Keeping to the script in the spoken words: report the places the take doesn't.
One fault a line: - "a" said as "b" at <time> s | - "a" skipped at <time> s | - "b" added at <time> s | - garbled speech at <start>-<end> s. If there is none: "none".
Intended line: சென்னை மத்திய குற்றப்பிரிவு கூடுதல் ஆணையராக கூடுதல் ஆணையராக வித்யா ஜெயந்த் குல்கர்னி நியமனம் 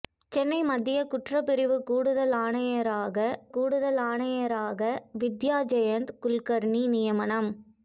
none